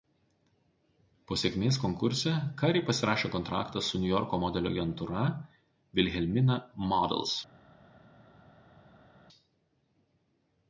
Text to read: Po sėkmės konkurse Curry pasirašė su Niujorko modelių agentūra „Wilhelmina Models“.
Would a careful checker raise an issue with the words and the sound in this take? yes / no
yes